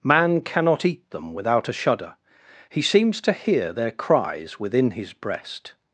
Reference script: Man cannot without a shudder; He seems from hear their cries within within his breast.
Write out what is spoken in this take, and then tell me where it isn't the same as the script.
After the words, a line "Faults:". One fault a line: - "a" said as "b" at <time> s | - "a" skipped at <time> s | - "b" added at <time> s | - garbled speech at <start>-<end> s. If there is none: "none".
Man cannot eat them without a shudder; He seems to hear their cries within his breast.
Faults:
- "eat them" added at 0.8 s
- "from" said as "to" at 3.2 s
- "within" skipped at 4.9 s